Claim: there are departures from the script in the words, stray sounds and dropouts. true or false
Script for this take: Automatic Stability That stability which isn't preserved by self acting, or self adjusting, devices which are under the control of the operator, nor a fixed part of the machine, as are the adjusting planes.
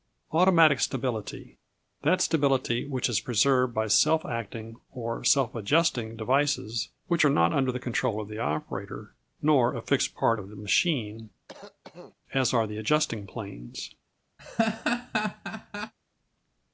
true